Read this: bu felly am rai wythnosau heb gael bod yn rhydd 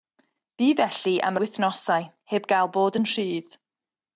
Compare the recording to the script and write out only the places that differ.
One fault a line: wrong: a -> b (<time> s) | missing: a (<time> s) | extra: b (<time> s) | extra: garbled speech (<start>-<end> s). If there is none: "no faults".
missing: rai (1.4 s)